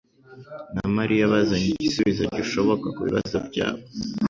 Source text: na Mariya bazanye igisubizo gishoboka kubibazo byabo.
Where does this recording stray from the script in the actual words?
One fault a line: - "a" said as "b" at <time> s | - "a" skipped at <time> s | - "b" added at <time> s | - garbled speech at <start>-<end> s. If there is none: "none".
none